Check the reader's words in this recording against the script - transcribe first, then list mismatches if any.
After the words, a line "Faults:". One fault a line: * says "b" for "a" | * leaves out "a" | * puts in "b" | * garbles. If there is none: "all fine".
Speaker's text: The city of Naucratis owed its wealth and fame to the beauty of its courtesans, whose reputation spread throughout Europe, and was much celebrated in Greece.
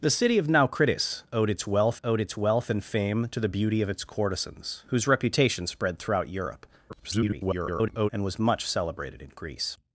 The city of Naucratis owed its wealth owed its wealth and fame to the beauty of its courtesans, whose reputation spread throughout Europe, [garbled] and was much celebrated in Greece.
Faults:
* puts in "owed its wealth"
* garbles